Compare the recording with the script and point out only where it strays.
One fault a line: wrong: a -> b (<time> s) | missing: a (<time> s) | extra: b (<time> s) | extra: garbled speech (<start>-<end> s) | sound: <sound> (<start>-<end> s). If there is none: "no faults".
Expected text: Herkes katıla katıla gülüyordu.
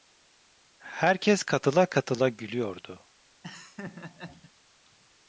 sound: laugh (3.4-4.5 s)